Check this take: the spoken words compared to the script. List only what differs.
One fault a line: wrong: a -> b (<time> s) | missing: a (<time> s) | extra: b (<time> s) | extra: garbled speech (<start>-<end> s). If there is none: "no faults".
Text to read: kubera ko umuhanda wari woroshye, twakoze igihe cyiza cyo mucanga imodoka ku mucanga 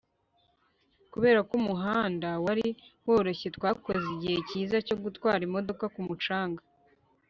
wrong: mucanga -> gutwara (5.0 s)